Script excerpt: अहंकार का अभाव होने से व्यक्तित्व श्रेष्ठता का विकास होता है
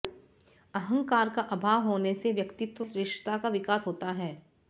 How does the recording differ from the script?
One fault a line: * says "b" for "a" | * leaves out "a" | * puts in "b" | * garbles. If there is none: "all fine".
all fine